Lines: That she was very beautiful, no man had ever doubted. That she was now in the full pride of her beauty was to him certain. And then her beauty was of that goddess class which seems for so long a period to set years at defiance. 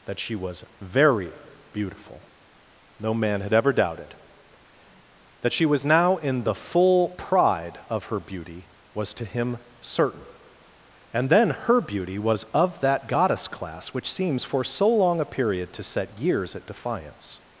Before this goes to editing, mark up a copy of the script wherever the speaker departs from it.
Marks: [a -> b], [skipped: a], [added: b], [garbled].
That she was very beautiful, no man had ever doubted. That she was now in the full pride of her beauty was to him certain. And then her beauty was of that goddess class which seems for so long a period to set years at defiance.